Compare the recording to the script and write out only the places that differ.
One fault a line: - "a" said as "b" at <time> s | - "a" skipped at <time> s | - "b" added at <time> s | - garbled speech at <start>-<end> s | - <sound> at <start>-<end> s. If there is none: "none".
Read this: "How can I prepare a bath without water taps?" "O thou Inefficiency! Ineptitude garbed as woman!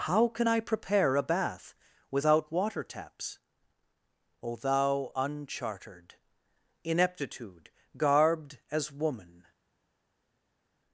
- "Inefficiency" said as "Unchartered" at 5.1 s